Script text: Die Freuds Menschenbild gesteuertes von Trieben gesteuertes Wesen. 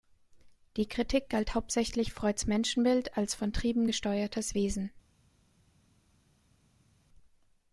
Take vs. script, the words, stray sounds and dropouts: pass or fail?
fail